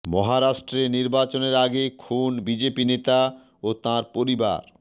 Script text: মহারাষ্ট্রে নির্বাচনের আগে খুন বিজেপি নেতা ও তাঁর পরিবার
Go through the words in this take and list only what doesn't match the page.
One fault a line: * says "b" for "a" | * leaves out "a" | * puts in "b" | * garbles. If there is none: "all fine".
all fine